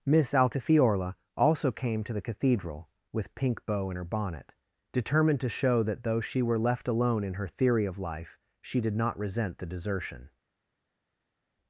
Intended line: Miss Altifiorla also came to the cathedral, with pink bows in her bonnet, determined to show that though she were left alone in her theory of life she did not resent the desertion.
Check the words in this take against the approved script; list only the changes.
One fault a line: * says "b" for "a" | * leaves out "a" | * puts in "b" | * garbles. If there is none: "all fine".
* says "bow" for "bows"